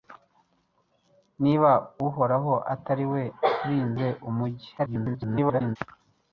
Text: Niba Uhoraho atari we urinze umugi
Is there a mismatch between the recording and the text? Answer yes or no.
yes